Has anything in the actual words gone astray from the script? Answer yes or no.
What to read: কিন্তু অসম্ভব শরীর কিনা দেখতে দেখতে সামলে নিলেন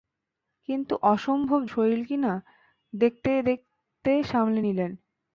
no